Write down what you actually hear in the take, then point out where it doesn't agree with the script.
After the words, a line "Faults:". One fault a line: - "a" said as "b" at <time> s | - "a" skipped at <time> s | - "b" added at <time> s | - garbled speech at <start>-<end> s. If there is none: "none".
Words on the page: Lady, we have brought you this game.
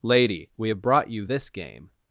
Lady, we have brought you this game.
Faults:
none